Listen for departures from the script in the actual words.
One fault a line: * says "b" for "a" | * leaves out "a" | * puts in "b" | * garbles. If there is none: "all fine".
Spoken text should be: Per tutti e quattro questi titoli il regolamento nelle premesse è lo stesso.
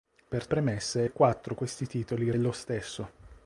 * says "premesse" for "tutti"
* leaves out "regolamento nelle premesse"